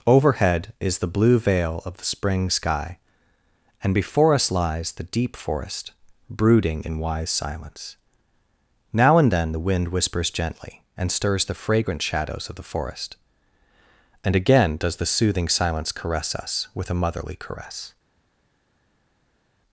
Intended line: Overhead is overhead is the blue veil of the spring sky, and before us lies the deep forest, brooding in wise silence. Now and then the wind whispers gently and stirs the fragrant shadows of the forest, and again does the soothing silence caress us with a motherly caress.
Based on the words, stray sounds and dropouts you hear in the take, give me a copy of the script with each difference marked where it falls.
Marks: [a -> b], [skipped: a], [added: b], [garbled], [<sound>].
Overhead is [skipped: overhead is] the blue veil of the spring sky, and before us lies the deep forest, brooding in wise silence. Now and then the wind whispers gently and stirs the fragrant shadows of the forest, and again does the soothing silence caress us with a motherly caress.